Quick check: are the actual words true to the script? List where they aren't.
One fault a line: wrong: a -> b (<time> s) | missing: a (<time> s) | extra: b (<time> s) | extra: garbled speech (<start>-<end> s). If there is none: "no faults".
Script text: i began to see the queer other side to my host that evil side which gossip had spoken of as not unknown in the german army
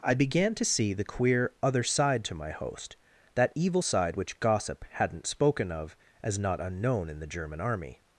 wrong: had -> hadn't (4.9 s)